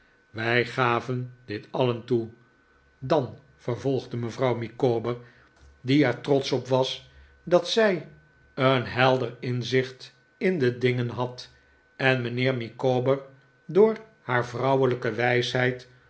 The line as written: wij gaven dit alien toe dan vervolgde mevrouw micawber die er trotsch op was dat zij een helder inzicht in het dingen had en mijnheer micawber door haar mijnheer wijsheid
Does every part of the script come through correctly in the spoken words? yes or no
no